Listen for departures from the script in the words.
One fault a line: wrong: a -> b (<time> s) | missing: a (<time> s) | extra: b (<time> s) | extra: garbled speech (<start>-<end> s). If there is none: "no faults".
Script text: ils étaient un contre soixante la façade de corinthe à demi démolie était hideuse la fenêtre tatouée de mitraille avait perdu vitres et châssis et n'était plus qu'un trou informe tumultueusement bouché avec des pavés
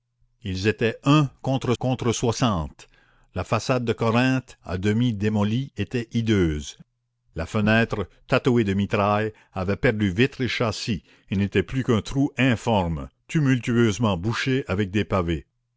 extra: contre (1.8 s)